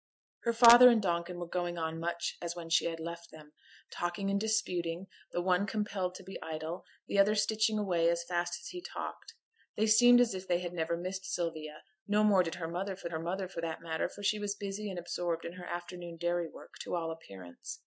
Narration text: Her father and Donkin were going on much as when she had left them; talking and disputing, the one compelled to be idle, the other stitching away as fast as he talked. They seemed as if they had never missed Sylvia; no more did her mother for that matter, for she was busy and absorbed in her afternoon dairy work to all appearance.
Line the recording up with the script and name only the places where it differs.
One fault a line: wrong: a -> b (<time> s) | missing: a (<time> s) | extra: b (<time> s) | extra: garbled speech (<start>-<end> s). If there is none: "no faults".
extra: her mother for (13.1 s)